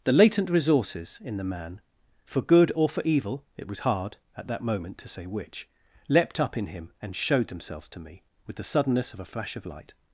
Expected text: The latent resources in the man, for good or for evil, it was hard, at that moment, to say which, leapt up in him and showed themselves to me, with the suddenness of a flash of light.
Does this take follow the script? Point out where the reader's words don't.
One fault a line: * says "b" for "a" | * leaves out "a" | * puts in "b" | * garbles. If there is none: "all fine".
all fine